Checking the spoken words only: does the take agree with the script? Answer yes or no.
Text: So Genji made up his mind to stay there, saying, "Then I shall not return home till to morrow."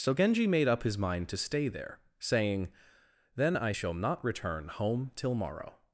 no